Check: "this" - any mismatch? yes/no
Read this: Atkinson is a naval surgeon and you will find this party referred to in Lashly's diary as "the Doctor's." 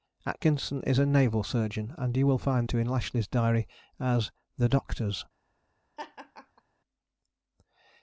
yes